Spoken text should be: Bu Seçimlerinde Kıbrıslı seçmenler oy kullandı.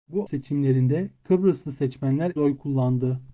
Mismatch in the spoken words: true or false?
false